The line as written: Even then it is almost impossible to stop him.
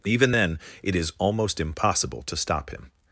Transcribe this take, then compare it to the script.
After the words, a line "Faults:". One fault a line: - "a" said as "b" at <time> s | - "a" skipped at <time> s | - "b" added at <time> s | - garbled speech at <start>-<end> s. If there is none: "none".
Even then it is almost impossible to stop him.
Faults:
none